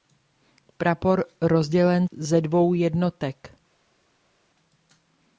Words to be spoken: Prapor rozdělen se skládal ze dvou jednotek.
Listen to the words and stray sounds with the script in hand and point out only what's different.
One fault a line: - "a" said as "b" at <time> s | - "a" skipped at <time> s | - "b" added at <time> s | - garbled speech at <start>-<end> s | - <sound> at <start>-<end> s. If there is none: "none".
- "se skládal" skipped at 2.1 s